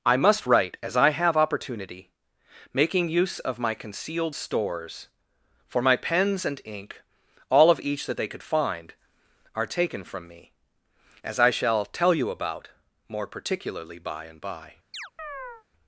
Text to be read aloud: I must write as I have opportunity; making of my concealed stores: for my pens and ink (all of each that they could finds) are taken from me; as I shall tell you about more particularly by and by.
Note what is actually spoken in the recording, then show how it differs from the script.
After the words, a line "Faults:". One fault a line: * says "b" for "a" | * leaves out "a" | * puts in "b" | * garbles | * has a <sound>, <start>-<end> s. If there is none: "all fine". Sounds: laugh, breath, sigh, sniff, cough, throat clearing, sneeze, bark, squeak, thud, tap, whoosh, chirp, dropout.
I must write as I have opportunity; making use of my concealed stores: for my pens and ink (all of each that they could find) are taken from me; as I shall tell you about more particularly by and by.
Faults:
* puts in "use"
* says "find" for "finds"
* has a chirp, 14.9-15.6 s